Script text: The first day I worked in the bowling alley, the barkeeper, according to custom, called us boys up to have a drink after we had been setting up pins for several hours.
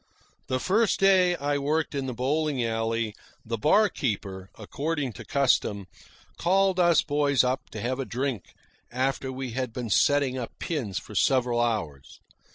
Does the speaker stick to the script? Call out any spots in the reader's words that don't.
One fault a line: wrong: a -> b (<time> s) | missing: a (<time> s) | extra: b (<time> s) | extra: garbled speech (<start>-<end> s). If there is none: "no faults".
no faults